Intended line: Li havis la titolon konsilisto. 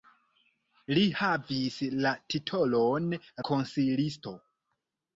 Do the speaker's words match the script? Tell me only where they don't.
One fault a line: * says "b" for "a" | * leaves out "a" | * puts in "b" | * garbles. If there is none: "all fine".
all fine